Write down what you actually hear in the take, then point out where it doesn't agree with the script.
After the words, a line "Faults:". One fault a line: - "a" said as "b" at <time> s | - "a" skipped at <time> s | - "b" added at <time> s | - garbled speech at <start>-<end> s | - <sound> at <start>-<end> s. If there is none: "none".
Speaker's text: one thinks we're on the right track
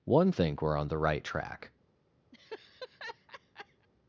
one think we're on the right track
Faults:
- "thinks" said as "think" at 0.3 s
- laugh at 2.3-3.9 s